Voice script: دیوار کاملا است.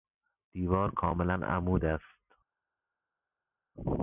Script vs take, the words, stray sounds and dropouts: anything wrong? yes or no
yes